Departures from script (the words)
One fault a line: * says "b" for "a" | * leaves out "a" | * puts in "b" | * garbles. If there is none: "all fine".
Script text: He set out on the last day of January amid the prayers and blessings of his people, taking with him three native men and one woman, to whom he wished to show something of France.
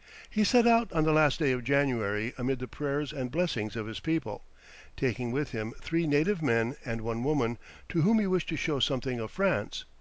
all fine